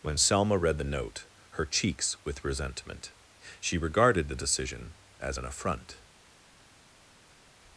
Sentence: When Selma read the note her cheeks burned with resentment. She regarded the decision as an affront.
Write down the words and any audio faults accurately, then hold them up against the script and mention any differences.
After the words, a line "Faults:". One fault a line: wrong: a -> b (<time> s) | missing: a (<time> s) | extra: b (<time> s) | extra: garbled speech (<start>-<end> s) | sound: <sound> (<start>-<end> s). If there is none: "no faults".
When Selma read the note her cheeks with resentment. She regarded the decision as an affront.
Faults:
missing: burned (2.2 s)